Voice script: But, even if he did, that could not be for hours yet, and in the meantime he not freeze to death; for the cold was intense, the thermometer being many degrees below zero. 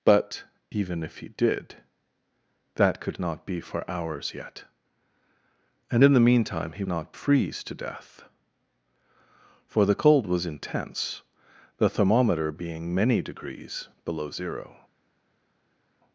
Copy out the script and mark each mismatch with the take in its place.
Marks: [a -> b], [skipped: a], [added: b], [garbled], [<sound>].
But, even if he did, that could not be for hours yet, and in the meantime he not freeze to death; for the cold was intense, the thermometer being many degrees below zero.